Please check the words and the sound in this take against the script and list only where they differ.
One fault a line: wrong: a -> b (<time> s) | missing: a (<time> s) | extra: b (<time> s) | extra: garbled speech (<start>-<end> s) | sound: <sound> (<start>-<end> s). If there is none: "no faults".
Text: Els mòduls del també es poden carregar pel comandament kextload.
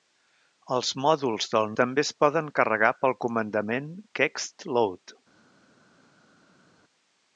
no faults